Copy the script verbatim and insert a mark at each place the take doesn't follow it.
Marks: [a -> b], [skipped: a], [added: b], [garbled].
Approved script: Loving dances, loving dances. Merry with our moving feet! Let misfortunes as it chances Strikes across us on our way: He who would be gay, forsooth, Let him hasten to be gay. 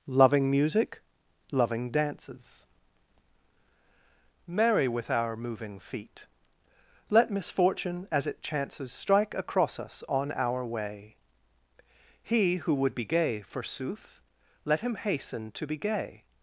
Loving [dances, -> music] loving dances. Merry with our moving feet! Let [misfortunes -> misfortune] as it chances [Strikes -> Strike] across us on our way: He who would be gay, forsooth, Let him hasten to be gay.